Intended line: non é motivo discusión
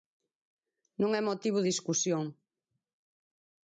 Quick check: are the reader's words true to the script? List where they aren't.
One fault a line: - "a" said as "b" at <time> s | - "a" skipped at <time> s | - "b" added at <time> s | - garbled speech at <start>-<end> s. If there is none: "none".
none